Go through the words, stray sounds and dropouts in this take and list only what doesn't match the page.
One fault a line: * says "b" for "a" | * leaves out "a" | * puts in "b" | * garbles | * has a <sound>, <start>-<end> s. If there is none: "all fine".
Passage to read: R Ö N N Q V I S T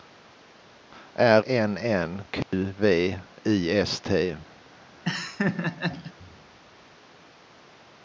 * leaves out "Ö"
* has a dropout, 2.4-2.5 s
* has a laugh, 5.0-6.1 s